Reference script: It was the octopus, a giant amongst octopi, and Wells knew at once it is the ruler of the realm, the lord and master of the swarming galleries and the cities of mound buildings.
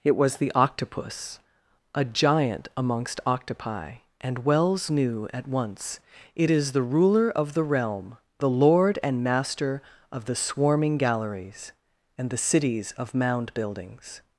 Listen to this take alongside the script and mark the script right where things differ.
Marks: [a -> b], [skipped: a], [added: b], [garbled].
It was the octopus, a giant amongst octopi, and Wells knew at once it is the ruler of the realm, the lord and master of the swarming galleries and the cities of mound buildings.